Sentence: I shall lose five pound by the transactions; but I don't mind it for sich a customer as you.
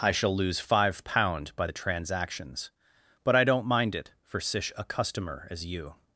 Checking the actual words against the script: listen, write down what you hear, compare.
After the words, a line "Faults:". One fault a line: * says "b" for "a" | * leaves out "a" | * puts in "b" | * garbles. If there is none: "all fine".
I shall lose five pound by the transactions; but I don't mind it for sich a customer as you.
Faults:
all fine